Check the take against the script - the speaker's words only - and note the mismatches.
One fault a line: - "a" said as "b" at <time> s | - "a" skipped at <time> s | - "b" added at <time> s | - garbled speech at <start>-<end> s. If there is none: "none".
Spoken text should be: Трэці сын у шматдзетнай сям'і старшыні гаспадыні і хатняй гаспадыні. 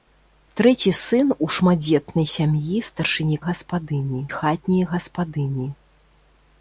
none